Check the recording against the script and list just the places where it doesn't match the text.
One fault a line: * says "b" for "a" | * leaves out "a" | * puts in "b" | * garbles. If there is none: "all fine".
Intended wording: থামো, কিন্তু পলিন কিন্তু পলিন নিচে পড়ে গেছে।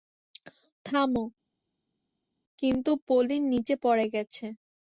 * leaves out "কিন্তু পলিন"